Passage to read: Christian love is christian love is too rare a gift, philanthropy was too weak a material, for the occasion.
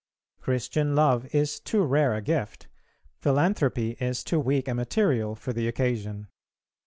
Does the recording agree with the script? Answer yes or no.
no